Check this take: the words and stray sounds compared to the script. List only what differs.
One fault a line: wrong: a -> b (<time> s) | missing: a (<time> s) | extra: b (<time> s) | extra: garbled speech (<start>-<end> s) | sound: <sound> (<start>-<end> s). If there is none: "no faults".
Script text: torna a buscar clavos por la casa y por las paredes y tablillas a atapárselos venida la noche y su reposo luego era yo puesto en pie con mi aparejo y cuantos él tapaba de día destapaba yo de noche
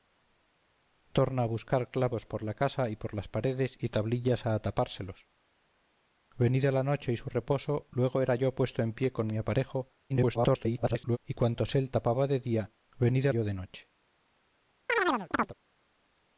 extra: garbled speech (10.1-11.2 s)
wrong: destapaba -> venida (13.0 s)
sound: chirp (14.9-15.5 s)